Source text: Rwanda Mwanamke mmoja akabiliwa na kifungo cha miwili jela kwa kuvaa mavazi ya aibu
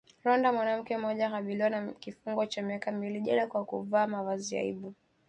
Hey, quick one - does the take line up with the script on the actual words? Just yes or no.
no